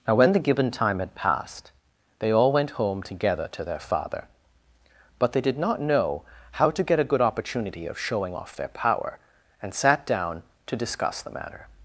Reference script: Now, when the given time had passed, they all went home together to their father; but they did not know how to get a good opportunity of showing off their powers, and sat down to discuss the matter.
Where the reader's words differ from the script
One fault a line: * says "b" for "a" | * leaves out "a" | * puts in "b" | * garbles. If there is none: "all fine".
* says "power" for "powers"